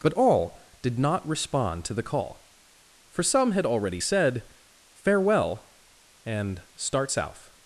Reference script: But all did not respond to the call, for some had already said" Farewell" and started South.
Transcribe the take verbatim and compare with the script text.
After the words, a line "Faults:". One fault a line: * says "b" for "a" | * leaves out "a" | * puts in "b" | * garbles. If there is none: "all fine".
But all did not respond to the call, for some had already said" Farewell" and start South.
Faults:
* says "start" for "started"